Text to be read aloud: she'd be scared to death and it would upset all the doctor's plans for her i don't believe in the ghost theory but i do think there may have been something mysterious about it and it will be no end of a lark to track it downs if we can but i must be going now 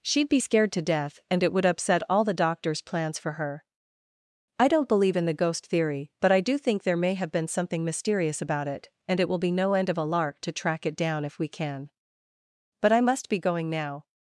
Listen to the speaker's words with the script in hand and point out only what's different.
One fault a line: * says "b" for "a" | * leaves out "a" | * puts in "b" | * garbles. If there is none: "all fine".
* says "down" for "downs"